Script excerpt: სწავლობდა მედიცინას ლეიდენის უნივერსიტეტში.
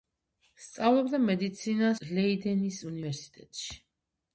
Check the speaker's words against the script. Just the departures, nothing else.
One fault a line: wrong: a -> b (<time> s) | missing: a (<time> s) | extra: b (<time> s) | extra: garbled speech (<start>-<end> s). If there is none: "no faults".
no faults